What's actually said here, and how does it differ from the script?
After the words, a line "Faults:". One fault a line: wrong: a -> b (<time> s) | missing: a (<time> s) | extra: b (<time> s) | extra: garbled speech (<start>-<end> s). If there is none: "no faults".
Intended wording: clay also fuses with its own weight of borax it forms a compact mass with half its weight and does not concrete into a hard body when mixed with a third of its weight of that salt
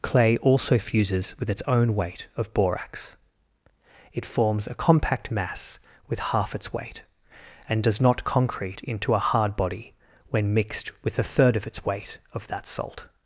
clay also fuses with its own weight of borax it forms a compact mass with half its weight and does not concrete into a hard body when mixed with a third of its weight of that salt
Faults:
no faults